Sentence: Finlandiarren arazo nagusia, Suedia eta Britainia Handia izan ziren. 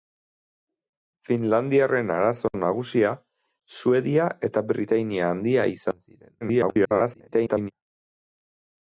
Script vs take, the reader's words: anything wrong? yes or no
yes